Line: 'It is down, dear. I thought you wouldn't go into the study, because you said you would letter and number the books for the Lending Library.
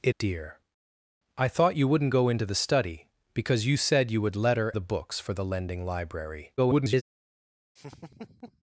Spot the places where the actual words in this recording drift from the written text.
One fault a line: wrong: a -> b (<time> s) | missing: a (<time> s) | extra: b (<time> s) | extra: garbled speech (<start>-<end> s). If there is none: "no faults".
missing: is down (0.1 s)
missing: and number (4.7 s)
extra: garbled speech (6.6-7.0 s)